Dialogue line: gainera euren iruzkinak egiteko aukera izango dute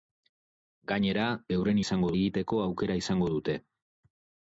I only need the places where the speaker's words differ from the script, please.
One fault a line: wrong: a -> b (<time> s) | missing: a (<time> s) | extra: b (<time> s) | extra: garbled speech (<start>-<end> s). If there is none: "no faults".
wrong: iruzkinak -> izango (1.9 s)